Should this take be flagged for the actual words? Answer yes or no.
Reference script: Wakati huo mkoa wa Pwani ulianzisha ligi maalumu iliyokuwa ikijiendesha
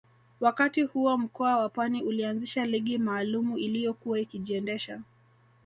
no